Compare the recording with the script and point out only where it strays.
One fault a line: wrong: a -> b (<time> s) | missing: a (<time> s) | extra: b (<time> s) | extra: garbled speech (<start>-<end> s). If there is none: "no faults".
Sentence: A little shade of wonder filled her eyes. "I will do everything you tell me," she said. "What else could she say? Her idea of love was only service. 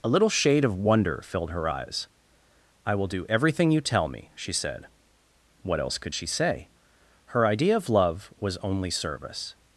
no faults